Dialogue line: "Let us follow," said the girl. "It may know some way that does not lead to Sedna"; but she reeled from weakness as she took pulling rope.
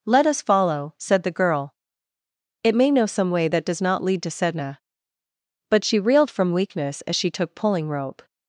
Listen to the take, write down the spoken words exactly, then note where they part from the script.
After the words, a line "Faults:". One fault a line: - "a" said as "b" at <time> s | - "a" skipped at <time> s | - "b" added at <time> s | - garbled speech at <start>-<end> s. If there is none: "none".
"Let us follow," said the girl. "It may know some way that does not lead to Sedna"; but she reeled from weakness as she took pulling rope.
Faults:
none